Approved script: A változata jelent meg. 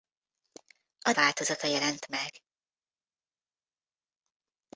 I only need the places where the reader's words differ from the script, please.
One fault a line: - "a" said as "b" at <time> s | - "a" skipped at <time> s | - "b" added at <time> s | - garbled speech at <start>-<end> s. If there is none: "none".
none